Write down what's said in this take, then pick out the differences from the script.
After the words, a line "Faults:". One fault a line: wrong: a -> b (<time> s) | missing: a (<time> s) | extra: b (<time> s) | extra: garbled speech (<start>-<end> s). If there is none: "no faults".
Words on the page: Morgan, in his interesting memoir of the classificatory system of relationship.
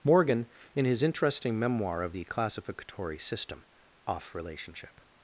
Morgan, in his interesting memoir of the classificatory system off relationship.
Faults:
wrong: of -> off (4.0 s)